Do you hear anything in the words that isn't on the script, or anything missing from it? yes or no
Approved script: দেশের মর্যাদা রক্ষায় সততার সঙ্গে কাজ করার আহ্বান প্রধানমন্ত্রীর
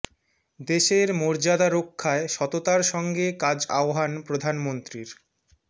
yes